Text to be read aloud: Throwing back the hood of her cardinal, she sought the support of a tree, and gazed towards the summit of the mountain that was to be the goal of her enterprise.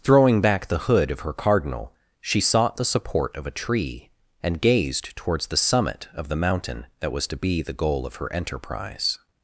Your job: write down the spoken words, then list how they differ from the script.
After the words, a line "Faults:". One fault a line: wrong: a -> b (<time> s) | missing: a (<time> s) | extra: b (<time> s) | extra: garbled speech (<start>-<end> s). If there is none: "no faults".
Throwing back the hood of her cardinal, she sought the support of a tree, and gazed towards the summit of the mountain that was to be the goal of her enterprise.
Faults:
no faults